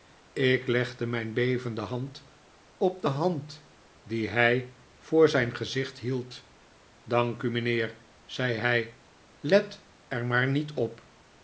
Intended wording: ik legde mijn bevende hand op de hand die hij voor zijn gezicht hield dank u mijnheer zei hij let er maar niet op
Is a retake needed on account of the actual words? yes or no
no